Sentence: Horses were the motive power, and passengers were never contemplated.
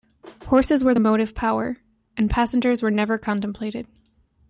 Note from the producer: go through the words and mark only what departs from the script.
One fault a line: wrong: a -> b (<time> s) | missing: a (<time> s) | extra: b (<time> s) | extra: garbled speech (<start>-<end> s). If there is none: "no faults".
no faults